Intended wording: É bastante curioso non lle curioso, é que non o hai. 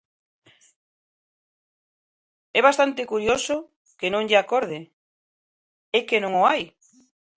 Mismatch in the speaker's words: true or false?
true